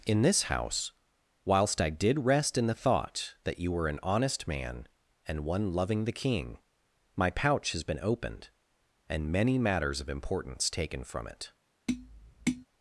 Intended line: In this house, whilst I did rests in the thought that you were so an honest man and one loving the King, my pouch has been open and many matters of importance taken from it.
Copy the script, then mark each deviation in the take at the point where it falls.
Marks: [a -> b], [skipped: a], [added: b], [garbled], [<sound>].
In this house, whilst I did [rests -> rest] in the thought that you were [skipped: so] an honest man and one loving the King, my pouch has been [open -> opened] and many matters of importance taken from it. [tap]